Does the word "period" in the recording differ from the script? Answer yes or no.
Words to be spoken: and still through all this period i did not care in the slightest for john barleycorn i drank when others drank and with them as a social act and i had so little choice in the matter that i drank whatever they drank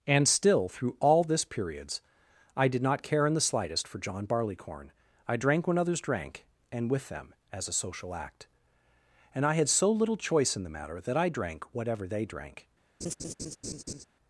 yes